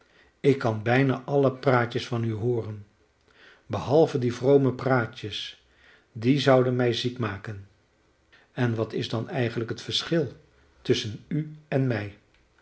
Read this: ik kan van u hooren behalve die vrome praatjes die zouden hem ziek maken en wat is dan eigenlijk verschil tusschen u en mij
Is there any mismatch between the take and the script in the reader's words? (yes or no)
yes